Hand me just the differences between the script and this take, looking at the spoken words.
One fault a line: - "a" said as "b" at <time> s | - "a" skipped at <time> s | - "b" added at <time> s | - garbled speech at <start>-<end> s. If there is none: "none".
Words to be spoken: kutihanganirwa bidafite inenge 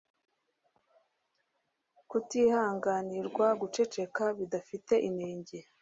- "guceceka" added at 3.6 s